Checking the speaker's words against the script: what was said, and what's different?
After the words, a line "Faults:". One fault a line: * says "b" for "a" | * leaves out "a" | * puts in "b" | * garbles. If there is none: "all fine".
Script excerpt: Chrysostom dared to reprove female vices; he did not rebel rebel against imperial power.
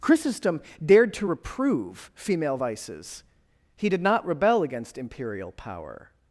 Chrysostom dared to reprove female vices; he did not rebel against imperial power.
Faults:
* leaves out "rebel"